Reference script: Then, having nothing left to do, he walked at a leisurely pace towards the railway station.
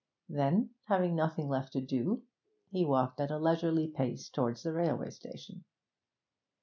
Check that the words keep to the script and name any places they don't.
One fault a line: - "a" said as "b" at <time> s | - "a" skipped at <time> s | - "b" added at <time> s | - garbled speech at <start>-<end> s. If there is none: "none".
none